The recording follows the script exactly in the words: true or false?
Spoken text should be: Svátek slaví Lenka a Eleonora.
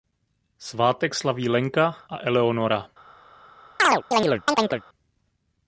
true